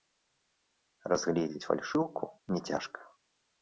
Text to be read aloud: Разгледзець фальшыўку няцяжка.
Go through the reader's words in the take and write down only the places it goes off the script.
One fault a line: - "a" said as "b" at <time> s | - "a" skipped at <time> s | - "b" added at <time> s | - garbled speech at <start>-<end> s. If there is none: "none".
none